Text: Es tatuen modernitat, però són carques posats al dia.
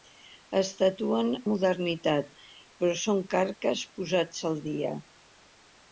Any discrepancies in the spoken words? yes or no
no